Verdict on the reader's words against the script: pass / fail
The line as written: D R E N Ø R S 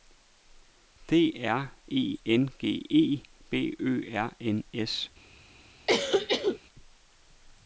fail